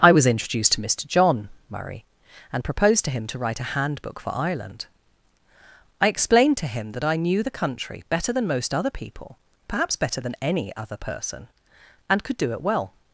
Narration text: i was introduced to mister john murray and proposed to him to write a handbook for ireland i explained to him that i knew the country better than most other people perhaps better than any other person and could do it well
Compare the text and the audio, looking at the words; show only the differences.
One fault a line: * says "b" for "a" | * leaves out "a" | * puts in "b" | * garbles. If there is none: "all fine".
all fine